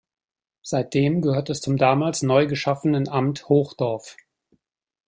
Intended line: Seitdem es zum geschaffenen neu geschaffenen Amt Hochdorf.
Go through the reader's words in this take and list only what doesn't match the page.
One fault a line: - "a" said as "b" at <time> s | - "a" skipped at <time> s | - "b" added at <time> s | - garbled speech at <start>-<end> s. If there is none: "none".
- "gehört" added at 1.2 s
- "geschaffenen" said as "damals" at 1.7 s